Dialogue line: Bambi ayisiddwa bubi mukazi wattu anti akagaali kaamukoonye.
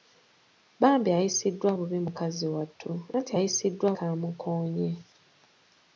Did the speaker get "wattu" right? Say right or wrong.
right